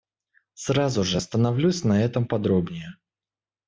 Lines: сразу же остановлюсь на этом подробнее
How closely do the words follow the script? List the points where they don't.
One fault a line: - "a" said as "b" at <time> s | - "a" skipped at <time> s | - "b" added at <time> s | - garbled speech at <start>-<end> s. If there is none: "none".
none